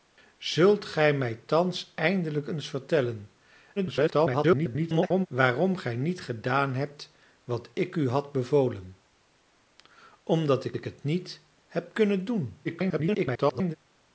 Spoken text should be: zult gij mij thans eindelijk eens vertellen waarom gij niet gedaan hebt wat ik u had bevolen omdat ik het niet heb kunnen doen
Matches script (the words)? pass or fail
fail